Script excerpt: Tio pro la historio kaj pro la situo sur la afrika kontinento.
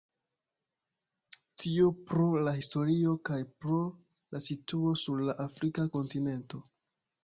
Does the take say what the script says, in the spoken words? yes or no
yes